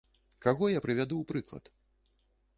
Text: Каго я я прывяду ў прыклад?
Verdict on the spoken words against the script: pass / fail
fail